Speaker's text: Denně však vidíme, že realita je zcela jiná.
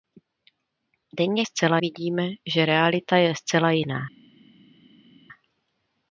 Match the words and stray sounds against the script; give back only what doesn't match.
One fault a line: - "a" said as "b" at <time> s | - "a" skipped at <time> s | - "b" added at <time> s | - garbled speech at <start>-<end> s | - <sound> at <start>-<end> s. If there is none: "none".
- "však" said as "zcela" at 1.4 s